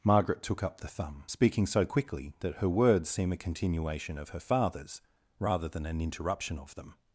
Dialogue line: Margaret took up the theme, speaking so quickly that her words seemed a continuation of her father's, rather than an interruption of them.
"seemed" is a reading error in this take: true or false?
true